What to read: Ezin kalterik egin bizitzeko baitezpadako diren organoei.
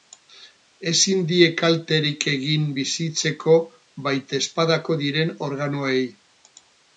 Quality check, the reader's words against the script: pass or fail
fail